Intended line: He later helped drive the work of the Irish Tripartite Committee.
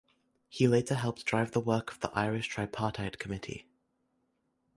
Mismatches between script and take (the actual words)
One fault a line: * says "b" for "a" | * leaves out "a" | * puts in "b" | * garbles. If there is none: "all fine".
all fine